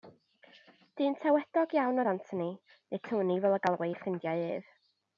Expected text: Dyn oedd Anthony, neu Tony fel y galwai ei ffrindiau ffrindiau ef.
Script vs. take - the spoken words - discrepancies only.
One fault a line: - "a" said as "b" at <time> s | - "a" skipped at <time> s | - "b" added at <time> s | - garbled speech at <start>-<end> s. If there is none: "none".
- "tawedog iawn" added at 1.2 s
- "ffrindiau" skipped at 4.4 s